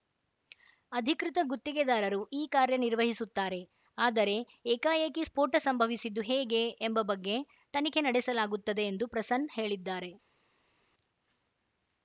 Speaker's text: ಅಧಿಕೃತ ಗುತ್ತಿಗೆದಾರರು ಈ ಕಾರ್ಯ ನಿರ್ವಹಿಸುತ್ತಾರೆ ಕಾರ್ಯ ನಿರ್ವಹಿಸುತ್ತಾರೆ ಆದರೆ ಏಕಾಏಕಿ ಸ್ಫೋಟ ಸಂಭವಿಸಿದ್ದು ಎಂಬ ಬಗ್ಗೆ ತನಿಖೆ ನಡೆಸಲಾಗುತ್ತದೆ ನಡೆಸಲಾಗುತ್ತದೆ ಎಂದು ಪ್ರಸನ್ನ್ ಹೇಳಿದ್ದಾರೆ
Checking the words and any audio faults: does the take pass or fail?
fail